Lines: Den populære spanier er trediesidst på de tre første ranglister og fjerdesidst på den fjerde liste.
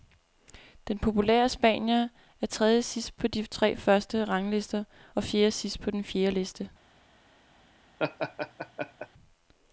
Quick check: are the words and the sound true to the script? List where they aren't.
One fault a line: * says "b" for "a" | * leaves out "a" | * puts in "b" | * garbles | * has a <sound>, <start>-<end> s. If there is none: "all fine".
* has a laugh, 8.0-9.1 s